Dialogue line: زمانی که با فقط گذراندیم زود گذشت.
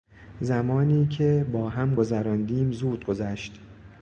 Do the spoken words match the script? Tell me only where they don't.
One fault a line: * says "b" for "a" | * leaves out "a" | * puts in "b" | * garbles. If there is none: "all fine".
* says "هم" for "فقط"